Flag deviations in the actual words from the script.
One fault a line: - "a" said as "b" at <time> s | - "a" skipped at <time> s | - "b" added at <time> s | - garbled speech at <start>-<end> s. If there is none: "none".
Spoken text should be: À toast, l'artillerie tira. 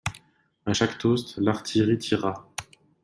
- "chaque" added at 0.7 s